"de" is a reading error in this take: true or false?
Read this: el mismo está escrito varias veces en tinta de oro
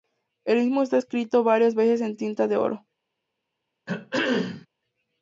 false